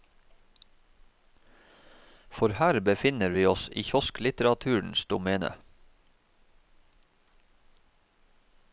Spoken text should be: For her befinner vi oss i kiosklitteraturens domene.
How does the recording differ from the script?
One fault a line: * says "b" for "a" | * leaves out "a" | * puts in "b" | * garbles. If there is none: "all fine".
all fine